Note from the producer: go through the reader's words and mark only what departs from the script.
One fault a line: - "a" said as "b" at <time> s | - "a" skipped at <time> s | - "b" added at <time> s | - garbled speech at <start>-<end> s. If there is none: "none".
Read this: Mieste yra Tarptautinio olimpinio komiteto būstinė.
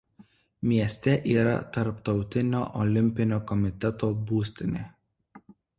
none